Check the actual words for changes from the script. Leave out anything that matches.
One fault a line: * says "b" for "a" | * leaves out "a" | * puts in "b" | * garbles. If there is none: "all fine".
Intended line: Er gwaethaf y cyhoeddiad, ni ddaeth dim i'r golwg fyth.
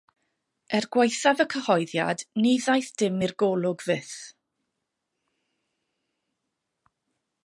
all fine